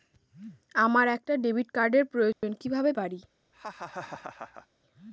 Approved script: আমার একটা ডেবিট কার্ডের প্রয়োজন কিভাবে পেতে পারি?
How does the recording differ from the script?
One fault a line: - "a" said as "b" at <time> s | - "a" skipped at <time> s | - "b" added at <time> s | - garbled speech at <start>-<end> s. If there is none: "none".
- "পেতে" skipped at 2.9 s